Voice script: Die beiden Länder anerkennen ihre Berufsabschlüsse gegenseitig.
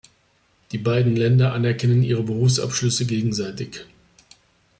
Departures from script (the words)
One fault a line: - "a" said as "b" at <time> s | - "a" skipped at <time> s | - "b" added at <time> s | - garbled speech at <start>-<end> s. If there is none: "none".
none